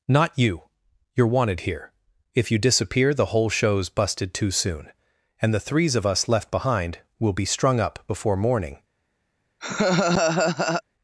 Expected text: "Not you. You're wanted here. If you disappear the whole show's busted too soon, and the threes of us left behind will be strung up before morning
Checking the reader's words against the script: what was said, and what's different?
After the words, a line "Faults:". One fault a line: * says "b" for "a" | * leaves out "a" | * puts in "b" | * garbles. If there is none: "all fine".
"Not you. You're wanted here. If you disappear the whole show's busted too soon, and the threes of us left behind will be strung up before morning
Faults:
all fine